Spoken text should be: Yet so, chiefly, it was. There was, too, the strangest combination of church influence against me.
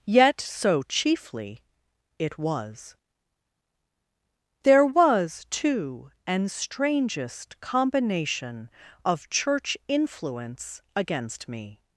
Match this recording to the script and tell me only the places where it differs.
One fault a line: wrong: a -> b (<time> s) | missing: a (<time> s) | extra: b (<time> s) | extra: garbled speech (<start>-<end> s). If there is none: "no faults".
wrong: the -> an (6.3 s)